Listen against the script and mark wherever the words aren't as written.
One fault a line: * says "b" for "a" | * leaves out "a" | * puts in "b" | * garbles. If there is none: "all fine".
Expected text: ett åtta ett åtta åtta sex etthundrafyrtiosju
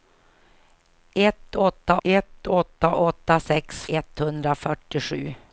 all fine